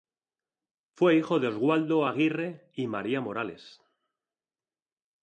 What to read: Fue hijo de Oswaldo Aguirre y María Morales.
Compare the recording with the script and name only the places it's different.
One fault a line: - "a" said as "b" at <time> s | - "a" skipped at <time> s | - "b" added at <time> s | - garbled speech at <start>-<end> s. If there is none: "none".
none